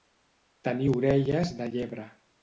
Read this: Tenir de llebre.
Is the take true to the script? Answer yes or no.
no